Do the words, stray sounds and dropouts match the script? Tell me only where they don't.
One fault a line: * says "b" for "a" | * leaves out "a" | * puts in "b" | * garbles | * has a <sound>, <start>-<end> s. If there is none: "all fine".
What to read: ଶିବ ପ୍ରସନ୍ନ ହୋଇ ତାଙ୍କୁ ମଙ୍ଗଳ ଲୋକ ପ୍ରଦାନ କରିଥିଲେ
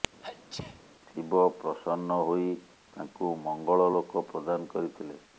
* has a sneeze, 0.2-0.8 s